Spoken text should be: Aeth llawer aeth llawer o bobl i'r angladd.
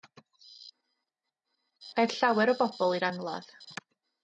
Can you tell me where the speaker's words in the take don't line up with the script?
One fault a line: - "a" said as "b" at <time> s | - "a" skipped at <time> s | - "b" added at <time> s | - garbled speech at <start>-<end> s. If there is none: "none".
- "aeth llawer" skipped at 2.5 s